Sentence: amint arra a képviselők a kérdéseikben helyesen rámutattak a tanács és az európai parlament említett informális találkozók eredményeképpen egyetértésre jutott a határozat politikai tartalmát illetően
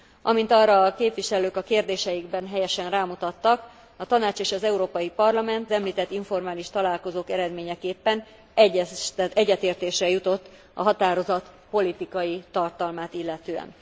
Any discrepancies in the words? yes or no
no